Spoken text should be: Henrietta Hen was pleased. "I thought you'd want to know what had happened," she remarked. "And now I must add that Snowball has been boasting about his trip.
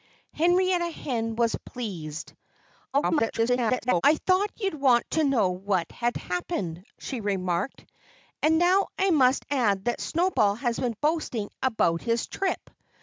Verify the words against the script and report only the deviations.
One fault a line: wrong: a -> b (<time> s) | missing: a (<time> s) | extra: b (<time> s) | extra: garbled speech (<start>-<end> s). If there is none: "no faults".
extra: garbled speech (2.9-4.0 s)